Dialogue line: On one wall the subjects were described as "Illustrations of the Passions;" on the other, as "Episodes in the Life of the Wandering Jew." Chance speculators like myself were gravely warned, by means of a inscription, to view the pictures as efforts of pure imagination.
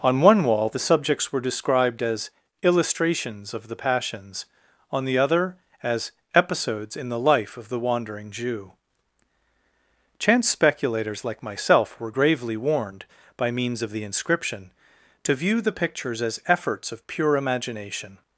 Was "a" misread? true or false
true